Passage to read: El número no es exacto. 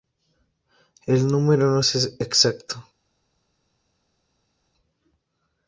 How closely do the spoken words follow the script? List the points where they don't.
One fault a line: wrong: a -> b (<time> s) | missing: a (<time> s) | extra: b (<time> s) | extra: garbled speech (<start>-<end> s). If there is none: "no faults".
no faults